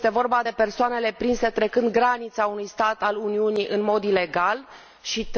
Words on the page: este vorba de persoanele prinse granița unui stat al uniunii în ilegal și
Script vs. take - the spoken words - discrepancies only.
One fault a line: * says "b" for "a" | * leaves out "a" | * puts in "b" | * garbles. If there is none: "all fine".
* puts in "trecând"
* puts in "mod"